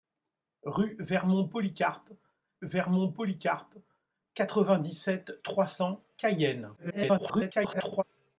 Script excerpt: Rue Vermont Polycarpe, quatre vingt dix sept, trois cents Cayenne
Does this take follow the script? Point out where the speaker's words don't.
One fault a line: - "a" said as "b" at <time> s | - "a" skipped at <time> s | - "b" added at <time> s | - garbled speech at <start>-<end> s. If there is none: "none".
- "Vermont Polycarpe" added at 2.6 s
- garbled speech at 6.8-8.0 s